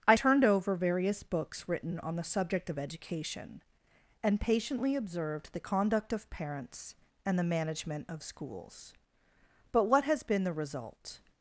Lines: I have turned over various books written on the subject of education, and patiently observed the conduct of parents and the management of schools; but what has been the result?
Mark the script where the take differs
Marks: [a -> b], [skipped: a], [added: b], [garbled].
I [skipped: have] turned over various books written on the subject of education, and patiently observed the conduct of parents and the management of schools; but what has been the result?